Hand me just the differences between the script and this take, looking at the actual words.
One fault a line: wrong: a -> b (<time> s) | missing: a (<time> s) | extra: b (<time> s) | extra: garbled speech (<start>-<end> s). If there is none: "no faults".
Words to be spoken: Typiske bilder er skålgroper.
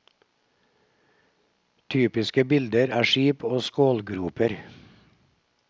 extra: skip og (3.0 s)